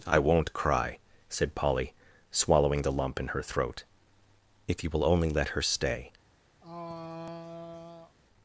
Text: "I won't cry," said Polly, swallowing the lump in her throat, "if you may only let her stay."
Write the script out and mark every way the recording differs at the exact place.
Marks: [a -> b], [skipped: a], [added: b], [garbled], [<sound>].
"I won't cry," said Polly, swallowing the lump in her throat, "if you [may -> will] only let her stay." [throat clearing]